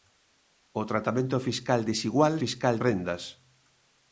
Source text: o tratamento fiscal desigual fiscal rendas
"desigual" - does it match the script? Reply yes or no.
yes